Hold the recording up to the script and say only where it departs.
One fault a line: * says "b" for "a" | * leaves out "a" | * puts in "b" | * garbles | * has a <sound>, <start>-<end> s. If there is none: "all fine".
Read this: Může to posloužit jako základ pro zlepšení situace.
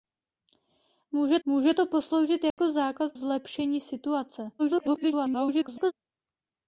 * puts in "může"
* has a dropout, 2.5-2.6 s
* leaves out "pro"
* garbles